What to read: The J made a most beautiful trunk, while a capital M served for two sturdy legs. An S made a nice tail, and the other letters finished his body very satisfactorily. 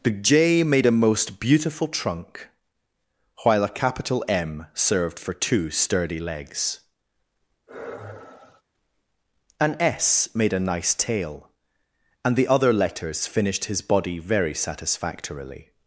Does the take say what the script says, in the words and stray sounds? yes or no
no